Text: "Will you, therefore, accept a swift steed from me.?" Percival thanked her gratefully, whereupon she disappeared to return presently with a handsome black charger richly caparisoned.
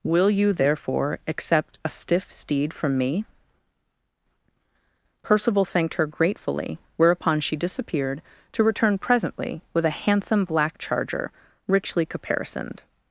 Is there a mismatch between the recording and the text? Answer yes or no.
yes